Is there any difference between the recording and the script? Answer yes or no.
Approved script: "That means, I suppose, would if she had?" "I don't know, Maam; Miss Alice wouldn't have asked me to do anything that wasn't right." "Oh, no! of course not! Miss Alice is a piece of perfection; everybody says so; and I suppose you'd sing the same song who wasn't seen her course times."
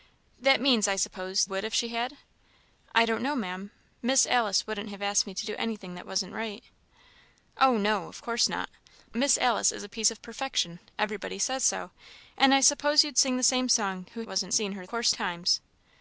no